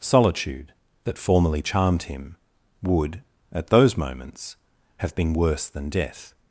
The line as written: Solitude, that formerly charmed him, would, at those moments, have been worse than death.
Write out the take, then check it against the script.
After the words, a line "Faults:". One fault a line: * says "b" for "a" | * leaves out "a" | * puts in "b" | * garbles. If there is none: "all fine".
Solitude, that formerly charmed him, would, at those moments, have been worse than death.
Faults:
all fine